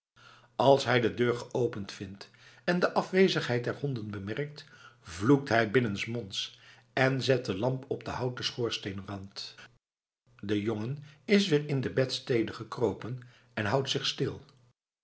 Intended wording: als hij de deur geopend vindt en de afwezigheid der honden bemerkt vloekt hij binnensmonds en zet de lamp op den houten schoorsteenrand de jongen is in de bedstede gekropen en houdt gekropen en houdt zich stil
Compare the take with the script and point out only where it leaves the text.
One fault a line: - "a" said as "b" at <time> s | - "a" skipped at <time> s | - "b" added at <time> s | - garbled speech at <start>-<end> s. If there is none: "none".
- "weer" added at 11.5 s
- "gekropen en houdt" skipped at 13.9 s